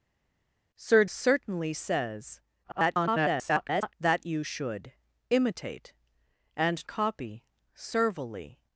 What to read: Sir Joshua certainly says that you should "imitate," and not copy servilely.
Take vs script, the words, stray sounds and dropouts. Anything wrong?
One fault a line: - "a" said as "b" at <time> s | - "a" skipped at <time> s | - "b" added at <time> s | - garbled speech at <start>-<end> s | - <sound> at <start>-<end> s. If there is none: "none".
- "Joshua" skipped at 1.0 s
- garbled speech at 2.6-3.9 s
- "not" skipped at 6.8 s